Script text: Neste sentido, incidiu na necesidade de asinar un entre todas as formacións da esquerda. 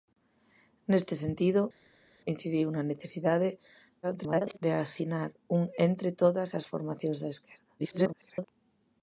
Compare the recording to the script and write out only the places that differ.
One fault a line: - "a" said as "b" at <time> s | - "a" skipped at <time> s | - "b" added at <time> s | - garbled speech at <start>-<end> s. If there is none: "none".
- garbled speech at 4.0-4.6 s
- garbled speech at 7.8-8.4 s